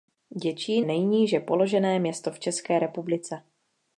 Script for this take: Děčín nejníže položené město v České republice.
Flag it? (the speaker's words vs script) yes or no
no